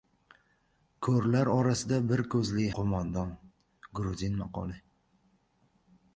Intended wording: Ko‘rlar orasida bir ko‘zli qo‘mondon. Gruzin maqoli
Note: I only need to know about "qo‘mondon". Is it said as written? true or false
true